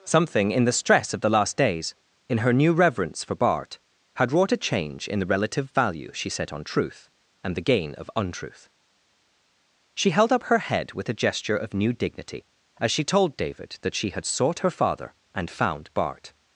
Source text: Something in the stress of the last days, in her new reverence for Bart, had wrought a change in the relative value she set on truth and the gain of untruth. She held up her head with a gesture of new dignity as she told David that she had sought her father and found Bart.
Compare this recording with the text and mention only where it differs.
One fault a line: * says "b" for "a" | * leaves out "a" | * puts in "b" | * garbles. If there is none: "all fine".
all fine